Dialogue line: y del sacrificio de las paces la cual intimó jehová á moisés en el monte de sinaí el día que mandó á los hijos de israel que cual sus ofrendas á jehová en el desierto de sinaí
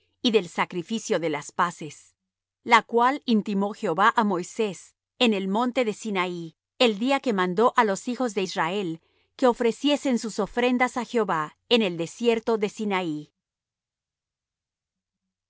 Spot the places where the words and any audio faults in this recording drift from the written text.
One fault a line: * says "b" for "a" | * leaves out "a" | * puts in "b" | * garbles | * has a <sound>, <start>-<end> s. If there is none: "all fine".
* says "ofreciesen" for "cual"